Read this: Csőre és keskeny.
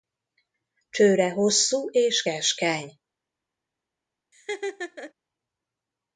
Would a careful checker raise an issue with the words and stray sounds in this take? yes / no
yes